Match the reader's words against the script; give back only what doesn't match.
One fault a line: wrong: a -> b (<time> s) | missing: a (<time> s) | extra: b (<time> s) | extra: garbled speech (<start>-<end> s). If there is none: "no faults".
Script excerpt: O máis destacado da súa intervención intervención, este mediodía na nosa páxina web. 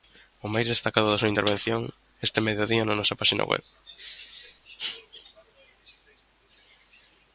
missing: intervención (1.8 s)